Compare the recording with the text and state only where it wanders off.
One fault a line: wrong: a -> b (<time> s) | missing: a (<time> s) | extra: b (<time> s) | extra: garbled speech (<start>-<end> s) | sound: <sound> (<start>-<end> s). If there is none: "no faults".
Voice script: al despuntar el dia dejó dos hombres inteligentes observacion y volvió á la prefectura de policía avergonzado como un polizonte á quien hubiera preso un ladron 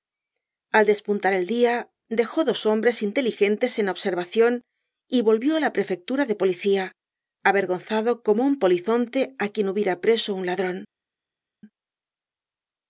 extra: en (3.8 s)